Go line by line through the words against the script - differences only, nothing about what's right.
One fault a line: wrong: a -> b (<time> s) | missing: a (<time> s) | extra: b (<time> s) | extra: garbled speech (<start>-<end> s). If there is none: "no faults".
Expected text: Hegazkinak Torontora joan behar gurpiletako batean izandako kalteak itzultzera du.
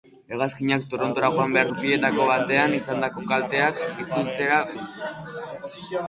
no faults